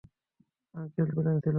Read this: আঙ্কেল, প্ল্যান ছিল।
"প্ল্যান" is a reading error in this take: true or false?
false